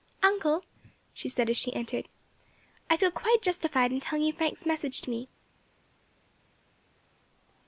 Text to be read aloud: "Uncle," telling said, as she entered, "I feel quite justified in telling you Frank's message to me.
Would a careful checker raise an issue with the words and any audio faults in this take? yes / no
yes